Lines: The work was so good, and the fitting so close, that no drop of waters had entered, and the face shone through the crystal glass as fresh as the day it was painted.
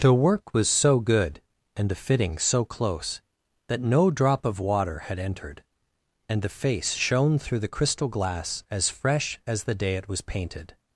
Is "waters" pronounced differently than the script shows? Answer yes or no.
yes